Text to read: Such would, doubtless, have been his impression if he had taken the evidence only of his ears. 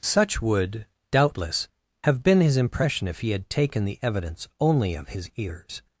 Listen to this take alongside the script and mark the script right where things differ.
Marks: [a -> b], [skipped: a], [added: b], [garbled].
Such would, doubtless, have been his impression if he had taken the evidence only of his ears.